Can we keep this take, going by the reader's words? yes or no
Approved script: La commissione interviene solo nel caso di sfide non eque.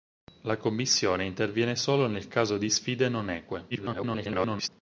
no